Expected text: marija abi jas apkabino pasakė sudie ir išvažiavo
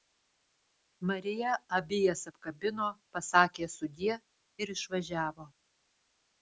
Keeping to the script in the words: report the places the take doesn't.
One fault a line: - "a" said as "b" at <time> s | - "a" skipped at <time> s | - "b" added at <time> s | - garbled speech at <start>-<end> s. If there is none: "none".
none